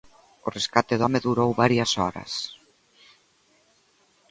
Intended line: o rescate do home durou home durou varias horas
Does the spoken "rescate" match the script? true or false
true